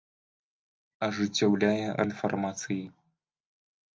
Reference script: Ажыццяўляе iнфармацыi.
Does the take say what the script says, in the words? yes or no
yes